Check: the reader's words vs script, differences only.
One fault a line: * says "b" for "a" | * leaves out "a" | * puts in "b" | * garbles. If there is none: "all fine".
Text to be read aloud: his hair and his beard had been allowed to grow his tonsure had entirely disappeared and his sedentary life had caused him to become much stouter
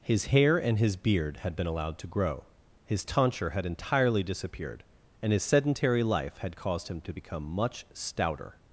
all fine